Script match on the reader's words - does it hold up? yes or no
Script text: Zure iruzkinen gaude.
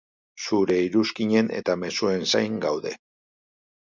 no